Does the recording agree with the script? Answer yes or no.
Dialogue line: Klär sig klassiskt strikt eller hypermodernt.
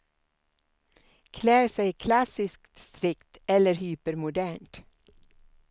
yes